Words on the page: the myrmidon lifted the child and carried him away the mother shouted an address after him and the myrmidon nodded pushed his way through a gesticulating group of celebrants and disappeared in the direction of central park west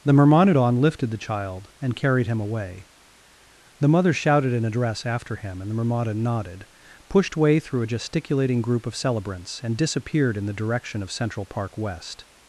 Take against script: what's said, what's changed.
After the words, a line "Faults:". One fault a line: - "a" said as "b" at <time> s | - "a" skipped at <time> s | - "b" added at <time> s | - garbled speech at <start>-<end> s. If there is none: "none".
the myrmidon lifted the child and carried him away the mother shouted an address after him and the myrmidon nodded pushed way through a gesticulating group of celebrants and disappeared in the direction of central park west
Faults:
- "his" skipped at 7.4 s